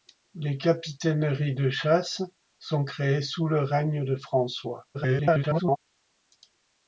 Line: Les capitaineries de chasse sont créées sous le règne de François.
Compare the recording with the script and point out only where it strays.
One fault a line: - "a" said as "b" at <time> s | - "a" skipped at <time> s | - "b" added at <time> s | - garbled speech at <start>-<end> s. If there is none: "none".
- garbled speech at 4.9-5.8 s